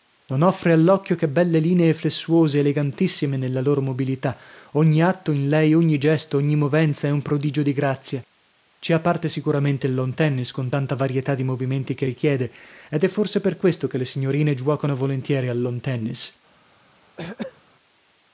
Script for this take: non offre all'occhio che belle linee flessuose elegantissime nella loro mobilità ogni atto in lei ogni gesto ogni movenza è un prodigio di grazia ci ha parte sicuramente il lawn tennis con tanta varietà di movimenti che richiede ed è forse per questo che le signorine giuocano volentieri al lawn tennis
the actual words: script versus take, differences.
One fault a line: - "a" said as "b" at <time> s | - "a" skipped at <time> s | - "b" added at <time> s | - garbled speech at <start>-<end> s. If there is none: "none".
none